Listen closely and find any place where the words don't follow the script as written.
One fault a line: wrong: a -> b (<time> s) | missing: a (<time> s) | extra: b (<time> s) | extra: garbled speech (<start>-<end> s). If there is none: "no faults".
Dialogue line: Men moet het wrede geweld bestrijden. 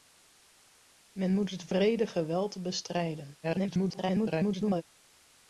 extra: garbled speech (3.4-4.8 s)